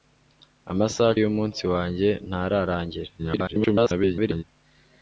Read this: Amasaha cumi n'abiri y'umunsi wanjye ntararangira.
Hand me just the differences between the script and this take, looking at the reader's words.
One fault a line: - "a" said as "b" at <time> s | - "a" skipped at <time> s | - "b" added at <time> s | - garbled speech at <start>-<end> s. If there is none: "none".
- "cumi n'abiri" skipped at 1.1 s
- garbled speech at 3.2-4.4 s